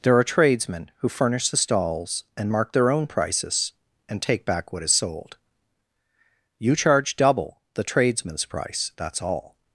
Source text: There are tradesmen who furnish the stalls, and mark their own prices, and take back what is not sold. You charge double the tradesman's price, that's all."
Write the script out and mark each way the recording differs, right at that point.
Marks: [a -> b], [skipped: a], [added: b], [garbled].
There are tradesmen who furnish the stalls, and mark their own prices, and take back what is [skipped: not] sold. You charge double the tradesman's price, that's all."